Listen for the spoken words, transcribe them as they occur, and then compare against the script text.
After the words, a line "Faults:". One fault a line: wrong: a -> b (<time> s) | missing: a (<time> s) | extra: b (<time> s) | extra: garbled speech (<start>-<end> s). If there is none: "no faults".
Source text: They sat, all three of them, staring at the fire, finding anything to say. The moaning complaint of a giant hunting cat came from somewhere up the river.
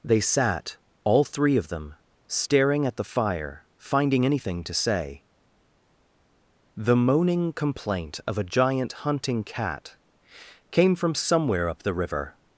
They sat, all three of them, staring at the fire, finding anything to say. The moaning complaint of a giant hunting cat came from somewhere up the river.
Faults:
no faults